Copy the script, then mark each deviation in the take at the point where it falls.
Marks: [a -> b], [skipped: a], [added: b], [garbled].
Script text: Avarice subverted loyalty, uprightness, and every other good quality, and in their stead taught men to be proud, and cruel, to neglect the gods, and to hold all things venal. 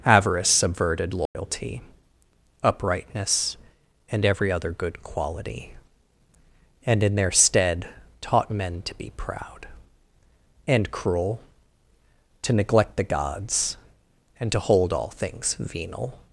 Avarice subverted loyalty, uprightness, and every other good quality, and in their stead taught men to be proud, and cruel, to neglect the gods, and to hold all things venal.